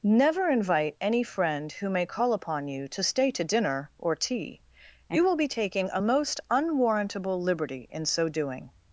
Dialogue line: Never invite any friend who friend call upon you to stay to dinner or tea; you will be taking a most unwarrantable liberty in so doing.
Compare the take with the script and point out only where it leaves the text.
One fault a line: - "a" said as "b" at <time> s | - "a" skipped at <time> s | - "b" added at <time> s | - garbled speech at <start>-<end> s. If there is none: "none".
- "friend" said as "may" at 1.9 s